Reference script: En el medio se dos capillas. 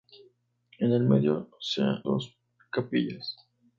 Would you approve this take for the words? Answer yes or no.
yes